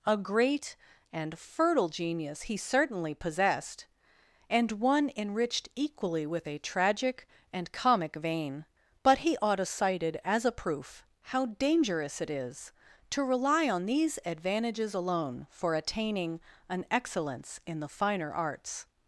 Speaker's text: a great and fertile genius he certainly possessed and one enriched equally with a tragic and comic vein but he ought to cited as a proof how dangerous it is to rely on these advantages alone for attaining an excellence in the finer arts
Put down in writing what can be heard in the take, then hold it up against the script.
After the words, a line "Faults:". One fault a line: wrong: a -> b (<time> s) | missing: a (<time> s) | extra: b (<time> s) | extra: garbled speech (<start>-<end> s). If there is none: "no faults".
a great and fertile genius he certainly possessed and one enriched equally with a tragic and comic vein but he ought to cited as a proof how dangerous it is to rely on these advantages alone for attaining an excellence in the finer arts
Faults:
no faults